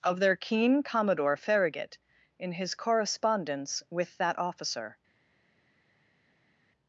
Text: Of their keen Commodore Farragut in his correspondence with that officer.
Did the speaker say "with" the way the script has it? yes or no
yes